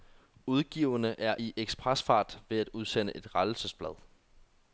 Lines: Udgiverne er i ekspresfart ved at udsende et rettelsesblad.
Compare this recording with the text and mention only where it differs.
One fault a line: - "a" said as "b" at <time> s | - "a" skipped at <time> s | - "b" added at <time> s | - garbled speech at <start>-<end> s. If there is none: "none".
none